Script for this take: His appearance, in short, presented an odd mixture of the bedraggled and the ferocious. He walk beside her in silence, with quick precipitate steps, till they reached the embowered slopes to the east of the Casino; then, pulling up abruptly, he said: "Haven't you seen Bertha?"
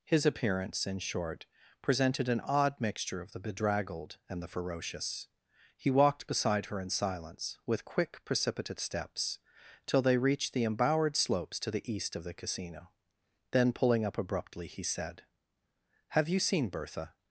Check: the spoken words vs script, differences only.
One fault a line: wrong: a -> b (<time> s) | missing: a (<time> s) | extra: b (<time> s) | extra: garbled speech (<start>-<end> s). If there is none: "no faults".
wrong: walk -> walked (5.9 s)
wrong: Haven't -> Have (16.1 s)